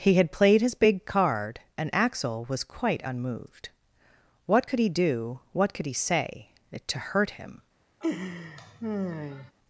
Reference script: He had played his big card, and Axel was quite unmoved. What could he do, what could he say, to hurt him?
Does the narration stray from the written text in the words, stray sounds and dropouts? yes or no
yes